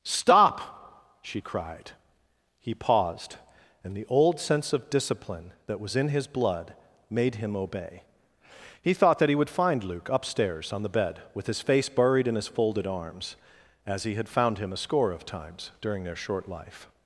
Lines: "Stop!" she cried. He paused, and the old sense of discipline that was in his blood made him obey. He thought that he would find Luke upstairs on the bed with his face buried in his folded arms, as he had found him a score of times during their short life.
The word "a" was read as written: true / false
true